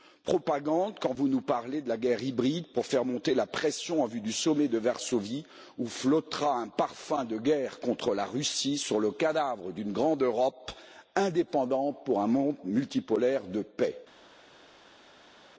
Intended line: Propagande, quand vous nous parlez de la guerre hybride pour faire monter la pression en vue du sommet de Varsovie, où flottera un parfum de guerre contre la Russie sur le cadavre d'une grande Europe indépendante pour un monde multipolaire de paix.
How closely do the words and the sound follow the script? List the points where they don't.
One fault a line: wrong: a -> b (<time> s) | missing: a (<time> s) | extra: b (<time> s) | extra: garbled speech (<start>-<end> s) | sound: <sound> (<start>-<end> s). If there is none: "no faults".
no faults